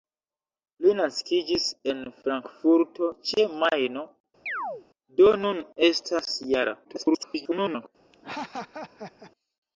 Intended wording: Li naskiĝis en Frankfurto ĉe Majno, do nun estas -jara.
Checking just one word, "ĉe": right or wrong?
right